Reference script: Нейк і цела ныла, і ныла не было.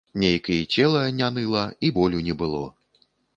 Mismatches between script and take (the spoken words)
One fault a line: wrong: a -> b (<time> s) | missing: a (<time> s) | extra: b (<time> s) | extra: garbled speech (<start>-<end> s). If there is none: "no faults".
extra: не (1.2 s)
wrong: ныла -> болю (2.0 s)